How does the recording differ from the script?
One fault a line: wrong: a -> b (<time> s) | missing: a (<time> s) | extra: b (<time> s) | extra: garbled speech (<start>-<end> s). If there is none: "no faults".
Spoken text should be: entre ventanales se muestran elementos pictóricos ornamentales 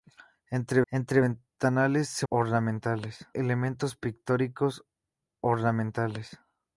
extra: entre (0.9 s)
wrong: muestran -> ornamentales (2.3 s)